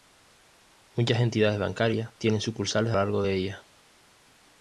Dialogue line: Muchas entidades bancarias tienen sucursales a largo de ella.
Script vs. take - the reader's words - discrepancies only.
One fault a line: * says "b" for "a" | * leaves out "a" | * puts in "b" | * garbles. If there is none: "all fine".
all fine